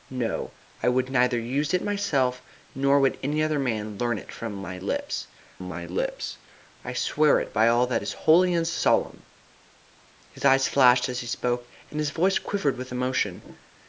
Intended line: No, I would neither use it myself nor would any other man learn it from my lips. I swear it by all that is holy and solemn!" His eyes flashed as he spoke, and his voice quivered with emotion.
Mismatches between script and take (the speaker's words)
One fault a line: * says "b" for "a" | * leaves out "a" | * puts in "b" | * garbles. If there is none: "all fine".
* puts in "my lips"